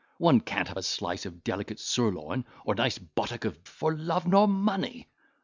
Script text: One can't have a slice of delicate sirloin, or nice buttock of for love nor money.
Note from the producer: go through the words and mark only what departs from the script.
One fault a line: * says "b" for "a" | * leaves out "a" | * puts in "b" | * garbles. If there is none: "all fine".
all fine